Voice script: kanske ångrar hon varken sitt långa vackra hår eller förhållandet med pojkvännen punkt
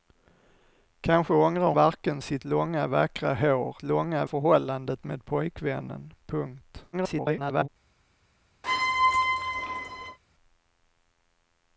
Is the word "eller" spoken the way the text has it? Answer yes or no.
no